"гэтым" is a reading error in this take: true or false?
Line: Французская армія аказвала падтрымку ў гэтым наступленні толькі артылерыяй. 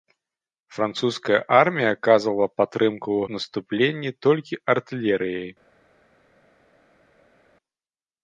true